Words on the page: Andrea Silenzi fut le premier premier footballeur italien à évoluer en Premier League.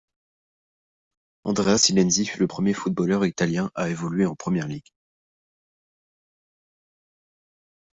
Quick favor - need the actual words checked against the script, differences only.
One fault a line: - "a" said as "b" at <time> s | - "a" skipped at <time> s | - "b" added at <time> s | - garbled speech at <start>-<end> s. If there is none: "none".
- "premier" skipped at 2.7 s